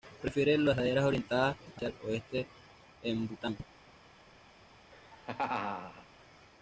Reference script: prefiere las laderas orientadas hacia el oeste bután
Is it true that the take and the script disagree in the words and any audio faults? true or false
true